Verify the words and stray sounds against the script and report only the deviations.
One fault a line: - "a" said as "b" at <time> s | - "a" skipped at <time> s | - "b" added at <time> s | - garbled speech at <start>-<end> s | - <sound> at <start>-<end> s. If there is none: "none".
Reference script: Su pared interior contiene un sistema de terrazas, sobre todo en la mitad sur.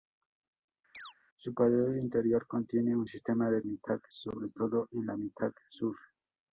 - chirp at 0.9-1.1 s
- "terrazas" said as "mitad" at 3.7 s